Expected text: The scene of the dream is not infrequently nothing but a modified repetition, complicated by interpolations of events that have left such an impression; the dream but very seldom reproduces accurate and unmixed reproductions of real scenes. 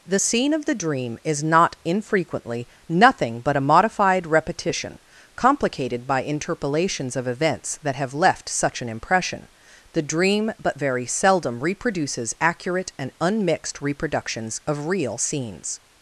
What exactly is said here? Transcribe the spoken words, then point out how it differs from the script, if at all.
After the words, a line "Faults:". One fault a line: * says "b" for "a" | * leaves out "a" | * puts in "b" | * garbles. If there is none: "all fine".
The scene of the dream is not infrequently nothing but a modified repetition, complicated by interpolations of events that have left such an impression; the dream but very seldom reproduces accurate and unmixed reproductions of real scenes.
Faults:
all fine